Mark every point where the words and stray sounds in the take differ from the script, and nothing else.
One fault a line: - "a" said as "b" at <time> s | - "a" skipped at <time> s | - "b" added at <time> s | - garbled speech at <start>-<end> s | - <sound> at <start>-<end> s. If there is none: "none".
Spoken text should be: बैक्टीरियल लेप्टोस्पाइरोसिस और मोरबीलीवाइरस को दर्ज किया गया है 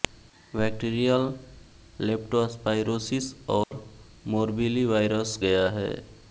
- dropout at 3.6-3.7 s
- "को दर्ज किया" skipped at 5.3 s